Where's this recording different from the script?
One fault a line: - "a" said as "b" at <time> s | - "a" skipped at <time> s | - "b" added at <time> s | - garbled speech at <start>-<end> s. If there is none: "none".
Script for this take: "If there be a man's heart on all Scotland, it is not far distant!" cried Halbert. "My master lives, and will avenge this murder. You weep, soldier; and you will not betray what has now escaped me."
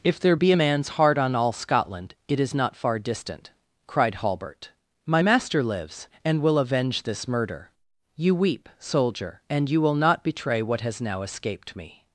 none